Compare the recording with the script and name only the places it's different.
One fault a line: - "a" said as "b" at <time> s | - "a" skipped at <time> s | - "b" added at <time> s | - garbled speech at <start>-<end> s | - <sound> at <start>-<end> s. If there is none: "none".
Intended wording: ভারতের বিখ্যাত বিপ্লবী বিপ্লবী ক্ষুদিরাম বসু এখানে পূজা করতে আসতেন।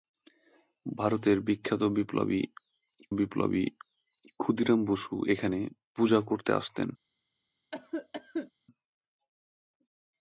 - cough at 7.7-8.5 s